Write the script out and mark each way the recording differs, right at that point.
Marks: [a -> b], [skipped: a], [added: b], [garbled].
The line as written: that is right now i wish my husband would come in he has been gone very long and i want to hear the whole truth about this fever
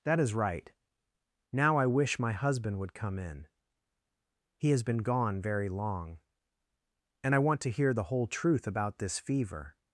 that is right now i wish my husband would come in he has been gone very long and i want to hear the whole truth about this fever